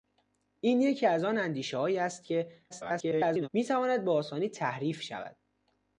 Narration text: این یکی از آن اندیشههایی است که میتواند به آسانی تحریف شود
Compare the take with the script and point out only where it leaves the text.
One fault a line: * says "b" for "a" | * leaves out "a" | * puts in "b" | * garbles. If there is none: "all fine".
* garbles